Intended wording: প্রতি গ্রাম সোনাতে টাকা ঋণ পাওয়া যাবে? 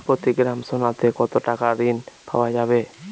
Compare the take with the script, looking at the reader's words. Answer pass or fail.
fail